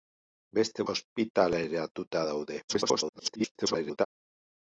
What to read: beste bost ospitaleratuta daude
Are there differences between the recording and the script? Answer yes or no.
yes